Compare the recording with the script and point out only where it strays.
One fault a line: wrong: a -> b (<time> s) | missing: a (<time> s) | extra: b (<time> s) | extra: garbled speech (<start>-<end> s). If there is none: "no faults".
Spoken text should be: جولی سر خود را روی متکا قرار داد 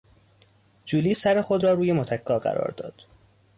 no faults